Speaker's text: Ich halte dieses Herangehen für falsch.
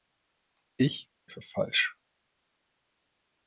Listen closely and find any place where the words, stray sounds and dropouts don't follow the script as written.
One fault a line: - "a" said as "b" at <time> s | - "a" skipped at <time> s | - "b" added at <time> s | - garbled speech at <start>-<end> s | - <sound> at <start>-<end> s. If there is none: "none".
- "halte dieses Herangehen" skipped at 1.1 s